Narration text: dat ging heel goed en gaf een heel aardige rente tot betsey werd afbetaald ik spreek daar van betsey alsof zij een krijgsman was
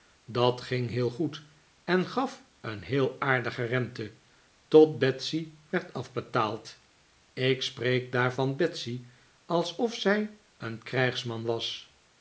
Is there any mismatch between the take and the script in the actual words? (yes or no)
no